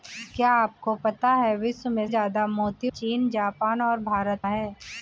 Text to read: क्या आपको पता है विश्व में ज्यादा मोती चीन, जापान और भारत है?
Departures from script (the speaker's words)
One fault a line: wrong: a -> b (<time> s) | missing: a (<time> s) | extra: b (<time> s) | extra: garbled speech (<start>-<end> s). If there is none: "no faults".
no faults